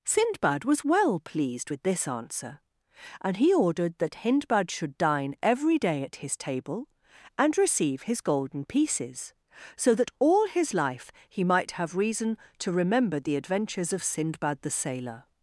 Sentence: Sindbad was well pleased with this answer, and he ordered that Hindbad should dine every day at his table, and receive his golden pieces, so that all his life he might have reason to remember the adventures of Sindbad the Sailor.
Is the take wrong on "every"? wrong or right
right